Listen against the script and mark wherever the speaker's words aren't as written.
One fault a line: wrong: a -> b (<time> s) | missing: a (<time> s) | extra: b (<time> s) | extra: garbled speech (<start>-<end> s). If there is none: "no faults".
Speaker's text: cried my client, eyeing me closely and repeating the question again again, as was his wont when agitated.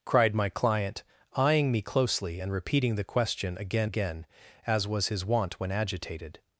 no faults